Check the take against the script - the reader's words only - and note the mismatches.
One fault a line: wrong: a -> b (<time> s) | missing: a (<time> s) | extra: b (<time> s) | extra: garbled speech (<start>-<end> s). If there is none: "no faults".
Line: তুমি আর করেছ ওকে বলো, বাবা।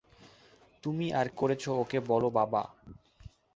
no faults